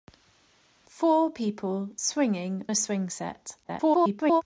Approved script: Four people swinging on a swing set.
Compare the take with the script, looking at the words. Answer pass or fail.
fail